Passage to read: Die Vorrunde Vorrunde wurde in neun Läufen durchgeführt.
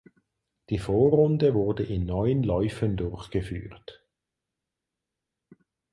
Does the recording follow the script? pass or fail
fail